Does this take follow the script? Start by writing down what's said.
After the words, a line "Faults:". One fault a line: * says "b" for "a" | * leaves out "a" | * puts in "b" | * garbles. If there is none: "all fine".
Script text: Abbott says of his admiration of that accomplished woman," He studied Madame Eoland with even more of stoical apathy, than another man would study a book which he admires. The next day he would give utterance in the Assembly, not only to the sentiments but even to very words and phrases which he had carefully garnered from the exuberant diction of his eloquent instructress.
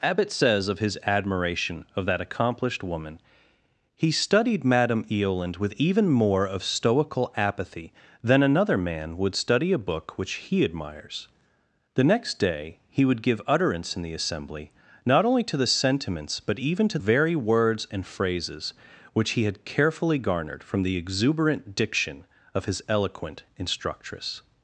Abbott says of his admiration of that accomplished woman," He studied Madame Eoland with even more of stoical apathy, than another man would study a book which he admires. The next day he would give utterance in the Assembly, not only to the sentiments but even to very words and phrases which he had carefully garnered from the exuberant diction of his eloquent instructress.
Faults:
all fine